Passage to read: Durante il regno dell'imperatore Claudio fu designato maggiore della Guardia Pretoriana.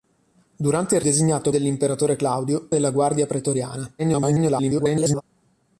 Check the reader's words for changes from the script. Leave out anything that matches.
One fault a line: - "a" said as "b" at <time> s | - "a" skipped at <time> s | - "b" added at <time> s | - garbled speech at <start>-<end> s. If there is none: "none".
- "regno" said as "designato" at 1.0 s
- "fu designato maggiore" skipped at 2.7 s
- garbled speech at 4.0-5.2 s